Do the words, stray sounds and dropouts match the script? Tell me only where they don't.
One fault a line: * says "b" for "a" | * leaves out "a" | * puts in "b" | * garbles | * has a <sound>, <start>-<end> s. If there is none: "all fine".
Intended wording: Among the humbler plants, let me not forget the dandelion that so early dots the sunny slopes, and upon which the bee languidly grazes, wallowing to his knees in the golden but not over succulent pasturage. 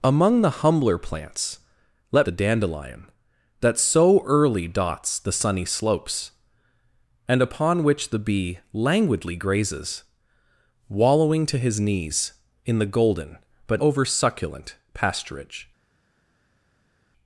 * leaves out "me not forget"
* leaves out "not"